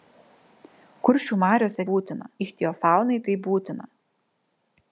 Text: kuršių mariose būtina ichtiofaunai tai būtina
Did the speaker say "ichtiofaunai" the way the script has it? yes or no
yes